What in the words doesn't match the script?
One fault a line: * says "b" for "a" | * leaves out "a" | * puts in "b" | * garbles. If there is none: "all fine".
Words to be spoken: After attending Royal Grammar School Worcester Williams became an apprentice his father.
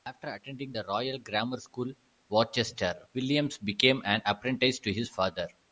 * puts in "the"
* puts in "to"